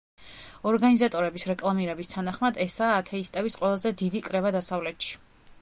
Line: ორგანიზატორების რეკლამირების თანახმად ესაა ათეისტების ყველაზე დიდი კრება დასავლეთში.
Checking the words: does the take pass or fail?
pass